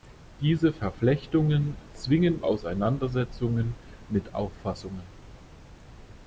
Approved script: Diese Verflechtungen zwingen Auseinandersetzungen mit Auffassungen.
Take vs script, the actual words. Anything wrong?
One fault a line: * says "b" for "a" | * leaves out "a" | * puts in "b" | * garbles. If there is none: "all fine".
all fine